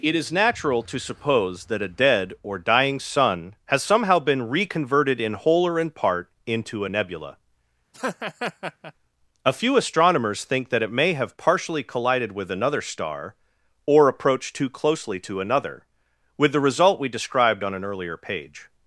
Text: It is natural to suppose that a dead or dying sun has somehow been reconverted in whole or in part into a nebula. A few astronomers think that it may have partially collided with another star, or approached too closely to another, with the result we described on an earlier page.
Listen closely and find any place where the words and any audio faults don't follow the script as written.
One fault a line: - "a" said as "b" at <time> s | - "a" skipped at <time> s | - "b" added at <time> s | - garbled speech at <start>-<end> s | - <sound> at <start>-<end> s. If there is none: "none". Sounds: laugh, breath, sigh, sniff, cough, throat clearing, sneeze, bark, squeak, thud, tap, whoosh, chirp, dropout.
- laugh at 7.9-8.9 s